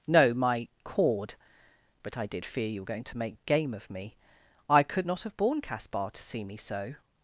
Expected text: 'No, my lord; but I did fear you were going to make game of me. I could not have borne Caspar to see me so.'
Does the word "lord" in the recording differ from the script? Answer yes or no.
yes